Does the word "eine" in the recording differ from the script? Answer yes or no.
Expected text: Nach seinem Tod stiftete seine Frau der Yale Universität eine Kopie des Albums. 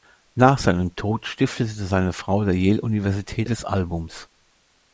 yes